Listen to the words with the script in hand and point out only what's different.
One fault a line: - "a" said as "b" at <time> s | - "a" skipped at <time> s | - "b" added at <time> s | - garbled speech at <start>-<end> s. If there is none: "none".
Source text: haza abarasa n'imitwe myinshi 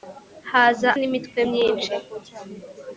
- "abarasa" skipped at 0.9 s